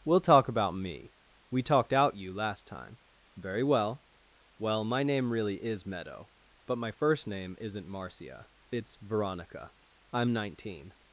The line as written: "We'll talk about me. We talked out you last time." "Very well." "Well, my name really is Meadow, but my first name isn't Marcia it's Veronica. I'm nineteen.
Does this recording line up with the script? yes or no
yes